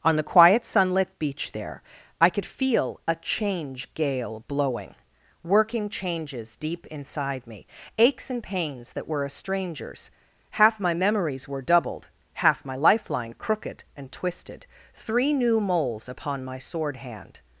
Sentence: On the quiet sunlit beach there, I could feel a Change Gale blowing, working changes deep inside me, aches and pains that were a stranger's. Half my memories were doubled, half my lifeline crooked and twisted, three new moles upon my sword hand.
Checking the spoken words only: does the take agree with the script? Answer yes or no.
yes